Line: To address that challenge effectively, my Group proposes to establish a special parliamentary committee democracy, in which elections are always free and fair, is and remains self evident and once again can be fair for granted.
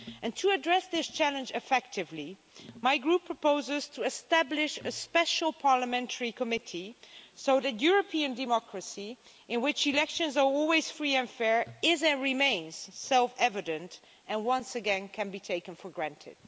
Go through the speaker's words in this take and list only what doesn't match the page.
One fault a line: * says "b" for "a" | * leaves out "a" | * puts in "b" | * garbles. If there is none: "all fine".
* says "this" for "that"
* puts in "so that European"
* says "taken" for "fair"